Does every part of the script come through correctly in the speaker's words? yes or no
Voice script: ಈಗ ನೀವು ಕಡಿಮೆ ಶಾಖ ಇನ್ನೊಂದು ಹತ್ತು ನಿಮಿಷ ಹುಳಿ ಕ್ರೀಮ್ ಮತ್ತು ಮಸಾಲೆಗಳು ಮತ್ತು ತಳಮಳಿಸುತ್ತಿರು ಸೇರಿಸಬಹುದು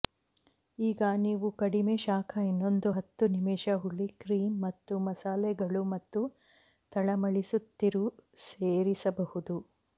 yes